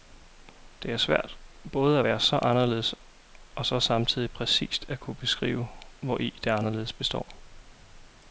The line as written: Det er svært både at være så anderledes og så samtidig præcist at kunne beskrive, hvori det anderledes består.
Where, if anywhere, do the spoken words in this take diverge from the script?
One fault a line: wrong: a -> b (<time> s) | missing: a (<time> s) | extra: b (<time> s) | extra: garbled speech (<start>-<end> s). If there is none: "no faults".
no faults